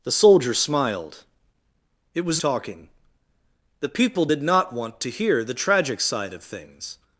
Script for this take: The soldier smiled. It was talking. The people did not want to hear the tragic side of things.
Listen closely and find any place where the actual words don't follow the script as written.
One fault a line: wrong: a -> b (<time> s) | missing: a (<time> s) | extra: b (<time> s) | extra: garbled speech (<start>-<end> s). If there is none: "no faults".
no faults